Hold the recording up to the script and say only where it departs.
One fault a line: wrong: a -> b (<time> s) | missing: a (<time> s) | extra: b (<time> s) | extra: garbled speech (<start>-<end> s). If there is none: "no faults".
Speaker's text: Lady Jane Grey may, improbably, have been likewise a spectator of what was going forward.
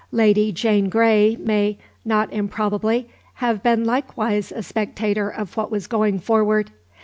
extra: not (2.0 s)